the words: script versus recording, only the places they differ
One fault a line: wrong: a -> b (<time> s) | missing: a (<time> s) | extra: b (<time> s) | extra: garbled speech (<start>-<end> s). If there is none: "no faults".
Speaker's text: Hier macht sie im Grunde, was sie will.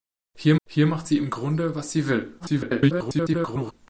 extra: hier (0.7 s)
extra: garbled speech (2.4-3.7 s)